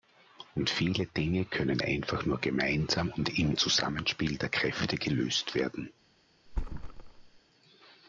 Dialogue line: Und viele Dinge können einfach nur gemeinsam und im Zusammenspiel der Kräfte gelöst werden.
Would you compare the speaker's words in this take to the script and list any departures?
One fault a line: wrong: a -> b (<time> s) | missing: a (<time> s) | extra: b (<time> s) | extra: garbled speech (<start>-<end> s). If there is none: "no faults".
no faults